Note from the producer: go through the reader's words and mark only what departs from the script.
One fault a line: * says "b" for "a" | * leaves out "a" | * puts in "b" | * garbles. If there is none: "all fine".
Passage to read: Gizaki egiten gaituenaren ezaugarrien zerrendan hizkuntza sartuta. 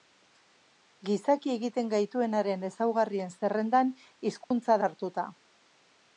all fine